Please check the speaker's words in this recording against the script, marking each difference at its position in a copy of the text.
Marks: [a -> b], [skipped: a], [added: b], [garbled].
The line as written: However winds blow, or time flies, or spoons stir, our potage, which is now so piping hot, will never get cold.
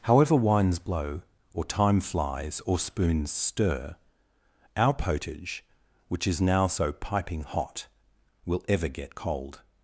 However winds blow, or time flies, or spoons stir, our potage, which is now so piping hot, will [never -> ever] get cold.